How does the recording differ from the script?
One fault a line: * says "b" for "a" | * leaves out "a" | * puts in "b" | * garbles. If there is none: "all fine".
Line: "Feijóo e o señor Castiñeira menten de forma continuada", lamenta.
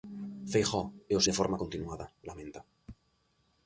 * leaves out "señor Castiñeira menten"